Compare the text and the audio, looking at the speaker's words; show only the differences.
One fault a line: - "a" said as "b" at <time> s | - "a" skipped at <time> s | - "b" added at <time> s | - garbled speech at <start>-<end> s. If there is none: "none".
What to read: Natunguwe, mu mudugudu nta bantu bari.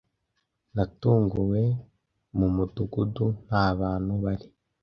none